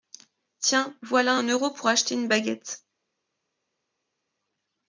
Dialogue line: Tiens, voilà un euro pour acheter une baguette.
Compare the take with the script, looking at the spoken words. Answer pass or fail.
pass